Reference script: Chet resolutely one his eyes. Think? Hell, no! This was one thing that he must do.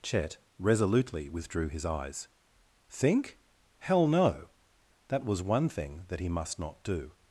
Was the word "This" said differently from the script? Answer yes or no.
yes